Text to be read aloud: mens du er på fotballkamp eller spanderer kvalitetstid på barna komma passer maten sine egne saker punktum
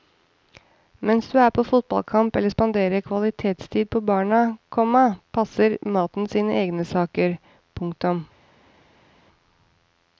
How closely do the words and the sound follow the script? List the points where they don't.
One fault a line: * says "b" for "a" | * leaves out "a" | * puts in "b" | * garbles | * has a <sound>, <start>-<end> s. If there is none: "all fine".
all fine